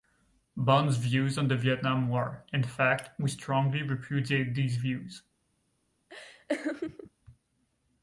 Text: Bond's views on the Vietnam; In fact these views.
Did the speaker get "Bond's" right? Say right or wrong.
right